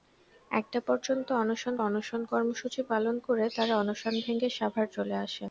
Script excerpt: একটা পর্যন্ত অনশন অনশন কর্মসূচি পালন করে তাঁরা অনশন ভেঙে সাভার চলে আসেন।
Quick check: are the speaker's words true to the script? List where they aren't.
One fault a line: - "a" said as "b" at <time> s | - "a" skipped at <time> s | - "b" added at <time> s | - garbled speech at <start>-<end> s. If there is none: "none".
none